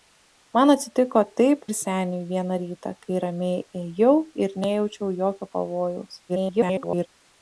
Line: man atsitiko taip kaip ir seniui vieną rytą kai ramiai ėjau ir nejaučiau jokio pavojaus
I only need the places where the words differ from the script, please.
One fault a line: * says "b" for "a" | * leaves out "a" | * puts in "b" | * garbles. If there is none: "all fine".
* leaves out "kaip"
* garbles